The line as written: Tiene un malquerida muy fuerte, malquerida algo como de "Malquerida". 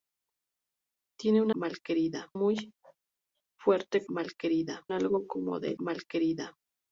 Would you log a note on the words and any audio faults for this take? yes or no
no